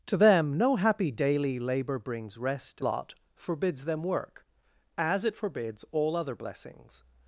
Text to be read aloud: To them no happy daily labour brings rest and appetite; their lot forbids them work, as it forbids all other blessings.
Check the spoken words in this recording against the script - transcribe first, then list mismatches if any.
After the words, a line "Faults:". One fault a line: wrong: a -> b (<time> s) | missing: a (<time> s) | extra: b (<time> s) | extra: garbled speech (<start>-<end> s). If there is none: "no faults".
To them no happy daily labour brings rest lot forbids them work, as it forbids all other blessings.
Faults:
missing: and appetite their (2.8 s)